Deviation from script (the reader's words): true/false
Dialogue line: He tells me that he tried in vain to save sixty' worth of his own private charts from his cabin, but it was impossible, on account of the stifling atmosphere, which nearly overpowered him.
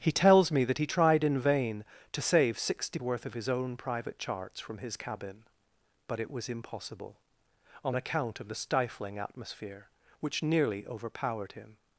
false